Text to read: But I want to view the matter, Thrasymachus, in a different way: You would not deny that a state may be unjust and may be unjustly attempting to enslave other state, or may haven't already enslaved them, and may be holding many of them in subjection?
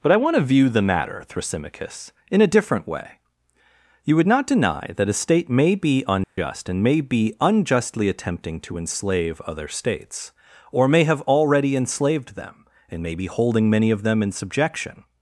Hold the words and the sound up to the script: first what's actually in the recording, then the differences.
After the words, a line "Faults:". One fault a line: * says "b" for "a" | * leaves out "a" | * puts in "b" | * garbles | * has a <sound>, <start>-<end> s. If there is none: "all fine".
But I want to view the matter, Thrasymachus, in a different way: You would not deny that a state may be unjust and may be unjustly attempting to enslave other states, or may have already enslaved them, and may be holding many of them in subjection?
Faults:
* has a dropout, 6.2-6.4 s
* says "states" for "state"
* says "have" for "haven't"